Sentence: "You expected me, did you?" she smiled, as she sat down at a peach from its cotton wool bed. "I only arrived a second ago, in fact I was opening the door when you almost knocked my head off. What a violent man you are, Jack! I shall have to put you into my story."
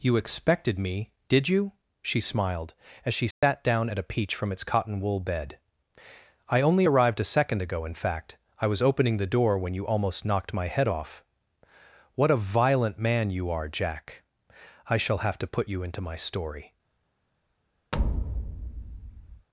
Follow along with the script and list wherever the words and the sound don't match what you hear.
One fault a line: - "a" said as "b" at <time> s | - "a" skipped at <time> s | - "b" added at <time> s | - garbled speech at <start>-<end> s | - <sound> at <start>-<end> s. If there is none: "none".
- dropout at 3.3-3.4 s
- thud at 17.9-19.5 s